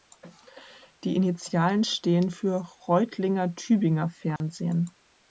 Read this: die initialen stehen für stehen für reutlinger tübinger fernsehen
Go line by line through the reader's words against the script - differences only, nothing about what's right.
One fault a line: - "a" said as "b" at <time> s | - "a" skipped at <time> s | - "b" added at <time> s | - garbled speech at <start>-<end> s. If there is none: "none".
- "stehen für" skipped at 2.6 s